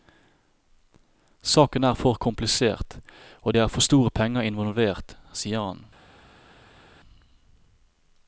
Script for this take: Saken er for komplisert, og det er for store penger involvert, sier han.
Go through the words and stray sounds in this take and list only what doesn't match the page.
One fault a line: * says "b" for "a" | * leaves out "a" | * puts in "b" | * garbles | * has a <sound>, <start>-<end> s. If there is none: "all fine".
all fine